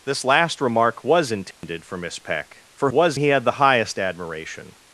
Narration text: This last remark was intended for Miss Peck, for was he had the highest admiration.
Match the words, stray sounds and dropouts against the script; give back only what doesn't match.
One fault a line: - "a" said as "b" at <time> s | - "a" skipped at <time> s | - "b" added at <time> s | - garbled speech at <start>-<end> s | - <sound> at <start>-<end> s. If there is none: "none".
- dropout at 1.5-1.6 s